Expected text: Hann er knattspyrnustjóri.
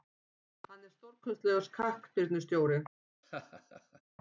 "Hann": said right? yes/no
yes